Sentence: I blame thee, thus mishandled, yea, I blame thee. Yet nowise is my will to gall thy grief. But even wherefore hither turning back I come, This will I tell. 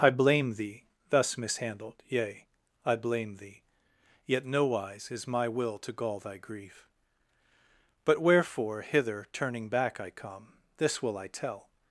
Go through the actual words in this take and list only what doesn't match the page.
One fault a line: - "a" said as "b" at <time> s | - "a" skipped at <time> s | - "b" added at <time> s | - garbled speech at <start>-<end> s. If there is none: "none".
- "even" skipped at 8.2 s